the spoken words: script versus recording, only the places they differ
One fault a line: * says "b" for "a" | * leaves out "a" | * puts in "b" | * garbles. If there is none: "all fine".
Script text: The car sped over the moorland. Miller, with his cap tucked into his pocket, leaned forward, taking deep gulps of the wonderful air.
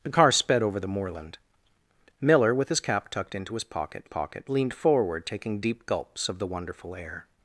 * puts in "pocket"